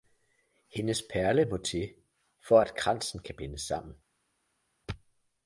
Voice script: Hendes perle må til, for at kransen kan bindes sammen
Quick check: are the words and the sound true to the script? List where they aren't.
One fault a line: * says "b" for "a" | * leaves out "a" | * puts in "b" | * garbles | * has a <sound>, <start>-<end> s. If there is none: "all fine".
all fine